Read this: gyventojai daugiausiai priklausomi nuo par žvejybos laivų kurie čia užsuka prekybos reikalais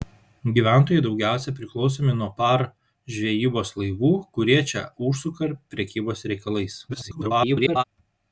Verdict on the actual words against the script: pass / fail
fail